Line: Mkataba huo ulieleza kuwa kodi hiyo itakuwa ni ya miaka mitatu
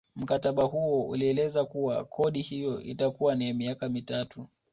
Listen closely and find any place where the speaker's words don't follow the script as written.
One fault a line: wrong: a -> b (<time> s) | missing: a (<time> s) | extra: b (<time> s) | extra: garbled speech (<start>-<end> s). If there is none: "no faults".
no faults